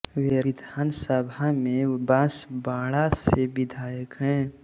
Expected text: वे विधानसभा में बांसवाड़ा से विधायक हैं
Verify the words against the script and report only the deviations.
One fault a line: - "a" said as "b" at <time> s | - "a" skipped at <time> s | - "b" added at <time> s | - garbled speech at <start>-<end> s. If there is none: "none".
none